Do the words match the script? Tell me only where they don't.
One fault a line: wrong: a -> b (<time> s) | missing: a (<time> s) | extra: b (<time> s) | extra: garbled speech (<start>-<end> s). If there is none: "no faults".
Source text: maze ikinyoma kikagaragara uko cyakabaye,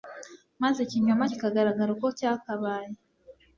no faults